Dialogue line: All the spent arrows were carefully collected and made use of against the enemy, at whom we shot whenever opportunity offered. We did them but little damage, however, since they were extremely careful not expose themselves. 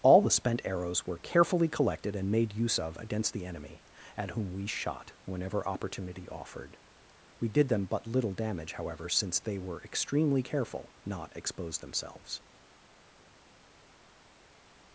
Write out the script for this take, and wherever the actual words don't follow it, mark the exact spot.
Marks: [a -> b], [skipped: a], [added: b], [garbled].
All the spent arrows were carefully collected and made use of against the enemy, at whom we shot whenever opportunity offered. We did them but little damage, however, since they were extremely careful not expose themselves.